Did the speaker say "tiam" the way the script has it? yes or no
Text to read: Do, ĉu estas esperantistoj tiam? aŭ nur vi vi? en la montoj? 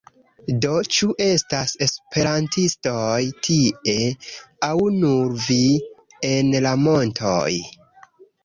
no